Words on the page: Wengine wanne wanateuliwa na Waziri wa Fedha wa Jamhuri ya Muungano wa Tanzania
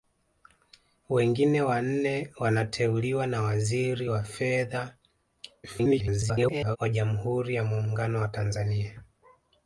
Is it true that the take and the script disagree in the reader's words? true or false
true